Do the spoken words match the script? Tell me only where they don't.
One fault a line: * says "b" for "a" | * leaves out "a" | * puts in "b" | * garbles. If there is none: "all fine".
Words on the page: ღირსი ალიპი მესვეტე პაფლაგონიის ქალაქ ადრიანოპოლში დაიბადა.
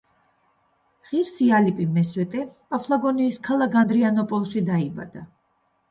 all fine